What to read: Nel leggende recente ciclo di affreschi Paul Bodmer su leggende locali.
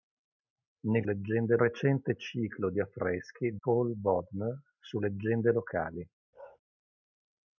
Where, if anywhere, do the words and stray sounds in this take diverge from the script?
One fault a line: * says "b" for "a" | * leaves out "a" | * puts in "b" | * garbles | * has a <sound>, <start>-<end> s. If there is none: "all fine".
* has a bark, 6.3-6.6 s